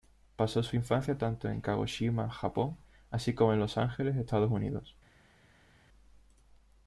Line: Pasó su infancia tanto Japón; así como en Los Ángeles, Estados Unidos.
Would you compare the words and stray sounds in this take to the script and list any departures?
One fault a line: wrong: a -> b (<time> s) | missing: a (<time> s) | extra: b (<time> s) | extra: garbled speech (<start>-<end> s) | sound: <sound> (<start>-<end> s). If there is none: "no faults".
extra: en Kagoshima (1.5 s)